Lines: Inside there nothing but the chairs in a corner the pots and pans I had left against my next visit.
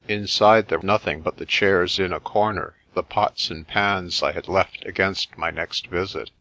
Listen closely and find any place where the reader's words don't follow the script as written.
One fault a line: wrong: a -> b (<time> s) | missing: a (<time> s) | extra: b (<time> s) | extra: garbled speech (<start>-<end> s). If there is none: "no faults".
no faults